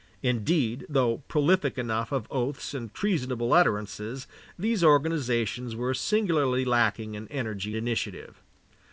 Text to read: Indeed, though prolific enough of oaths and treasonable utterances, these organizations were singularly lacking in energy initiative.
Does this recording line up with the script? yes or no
yes